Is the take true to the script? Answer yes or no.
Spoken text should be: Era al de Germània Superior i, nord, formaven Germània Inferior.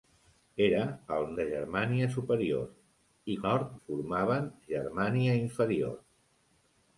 yes